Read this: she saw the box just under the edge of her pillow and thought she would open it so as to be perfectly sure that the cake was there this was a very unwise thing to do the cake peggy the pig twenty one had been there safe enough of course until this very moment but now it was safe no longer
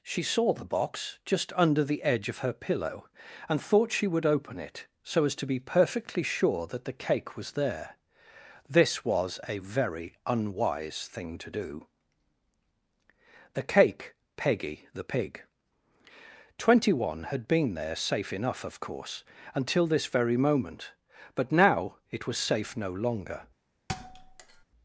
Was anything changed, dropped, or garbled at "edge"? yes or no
no